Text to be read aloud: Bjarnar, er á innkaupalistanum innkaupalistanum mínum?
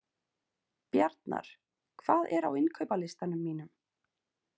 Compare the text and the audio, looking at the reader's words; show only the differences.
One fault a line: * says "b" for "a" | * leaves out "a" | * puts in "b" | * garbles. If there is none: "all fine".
* puts in "hvað"
* leaves out "innkaupalistanum"